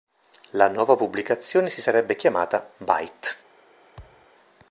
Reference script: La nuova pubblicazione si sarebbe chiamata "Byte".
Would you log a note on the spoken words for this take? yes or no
no